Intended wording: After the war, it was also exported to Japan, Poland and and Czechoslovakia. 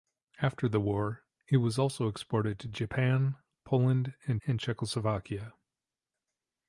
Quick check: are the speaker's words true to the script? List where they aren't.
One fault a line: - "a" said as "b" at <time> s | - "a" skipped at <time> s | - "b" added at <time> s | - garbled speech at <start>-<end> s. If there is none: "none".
none